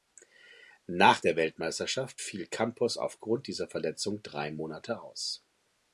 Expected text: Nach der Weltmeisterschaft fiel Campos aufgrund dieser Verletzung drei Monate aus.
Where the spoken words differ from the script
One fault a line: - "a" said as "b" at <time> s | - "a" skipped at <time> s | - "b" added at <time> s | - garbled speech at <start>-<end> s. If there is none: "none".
none